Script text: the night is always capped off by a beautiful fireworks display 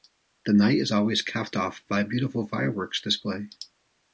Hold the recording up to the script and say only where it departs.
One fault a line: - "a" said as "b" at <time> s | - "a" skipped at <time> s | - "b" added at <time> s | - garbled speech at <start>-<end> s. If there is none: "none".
none